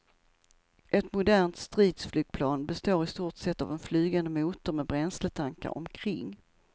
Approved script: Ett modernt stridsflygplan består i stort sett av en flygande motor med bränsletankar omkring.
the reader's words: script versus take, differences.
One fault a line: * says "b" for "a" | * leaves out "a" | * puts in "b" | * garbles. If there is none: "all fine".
all fine